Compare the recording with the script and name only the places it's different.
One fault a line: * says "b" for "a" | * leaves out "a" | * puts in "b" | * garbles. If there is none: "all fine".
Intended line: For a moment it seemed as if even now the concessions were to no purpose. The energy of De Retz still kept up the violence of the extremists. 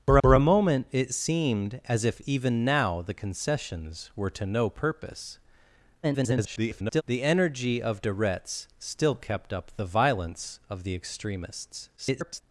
* puts in "for"
* garbles
* garbles